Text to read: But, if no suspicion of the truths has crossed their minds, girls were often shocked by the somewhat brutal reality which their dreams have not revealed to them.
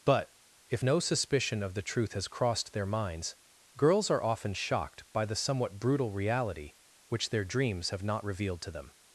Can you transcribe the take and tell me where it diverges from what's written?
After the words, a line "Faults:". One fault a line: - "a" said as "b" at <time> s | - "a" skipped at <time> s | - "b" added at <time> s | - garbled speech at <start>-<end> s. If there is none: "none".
But, if no suspicion of the truth has crossed their minds, girls are often shocked by the somewhat brutal reality which their dreams have not revealed to them.
Faults:
- "truths" said as "truth" at 1.8 s
- "were" said as "are" at 4.1 s